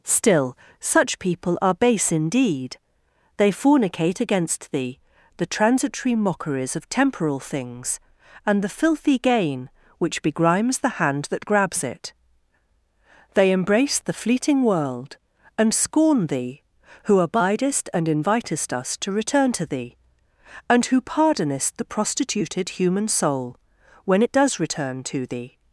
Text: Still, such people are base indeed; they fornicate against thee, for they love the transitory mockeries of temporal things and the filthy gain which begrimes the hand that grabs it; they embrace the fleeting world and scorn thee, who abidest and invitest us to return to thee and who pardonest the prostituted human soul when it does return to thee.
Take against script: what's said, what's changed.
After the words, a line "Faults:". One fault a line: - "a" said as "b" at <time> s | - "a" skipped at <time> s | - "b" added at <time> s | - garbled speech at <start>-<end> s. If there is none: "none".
Still, such people are base indeed; they fornicate against thee, the transitory mockeries of temporal things and the filthy gain which begrimes the hand that grabs it; they embrace the fleeting world and scorn thee, who abidest and invitest us to return to thee and who pardonest the prostituted human soul when it does return to thee.
Faults:
- "for they love" skipped at 5.0 s